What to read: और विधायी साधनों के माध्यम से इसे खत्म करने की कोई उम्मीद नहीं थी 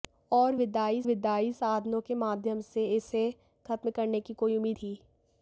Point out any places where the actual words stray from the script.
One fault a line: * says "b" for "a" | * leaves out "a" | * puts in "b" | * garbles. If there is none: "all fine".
* puts in "विधायी"
* leaves out "नहीं"